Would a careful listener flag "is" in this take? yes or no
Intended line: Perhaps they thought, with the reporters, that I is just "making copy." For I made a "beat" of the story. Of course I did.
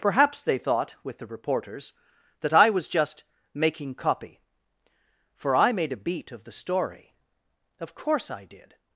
yes